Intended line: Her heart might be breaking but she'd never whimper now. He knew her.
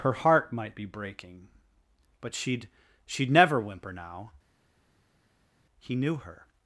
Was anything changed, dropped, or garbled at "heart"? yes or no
no